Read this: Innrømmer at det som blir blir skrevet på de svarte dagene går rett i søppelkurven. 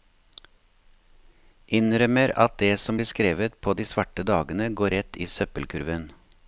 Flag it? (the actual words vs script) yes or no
yes